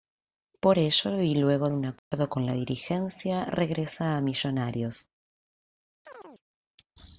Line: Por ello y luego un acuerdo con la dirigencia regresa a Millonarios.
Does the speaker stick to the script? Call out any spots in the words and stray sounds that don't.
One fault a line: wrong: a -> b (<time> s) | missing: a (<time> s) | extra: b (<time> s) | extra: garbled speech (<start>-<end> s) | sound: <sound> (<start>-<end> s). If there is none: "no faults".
sound: dropout (2.0-2.1 s)
sound: chirp (6.1-6.4 s)